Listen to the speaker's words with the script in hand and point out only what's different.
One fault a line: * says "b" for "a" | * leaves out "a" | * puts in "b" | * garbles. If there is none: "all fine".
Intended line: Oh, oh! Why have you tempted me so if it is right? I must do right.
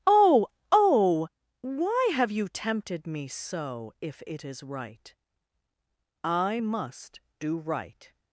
all fine